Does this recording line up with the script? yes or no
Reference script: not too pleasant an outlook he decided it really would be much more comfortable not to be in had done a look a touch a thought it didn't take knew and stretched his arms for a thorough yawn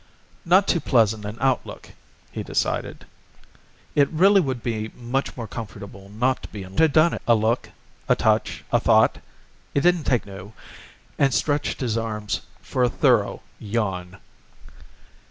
yes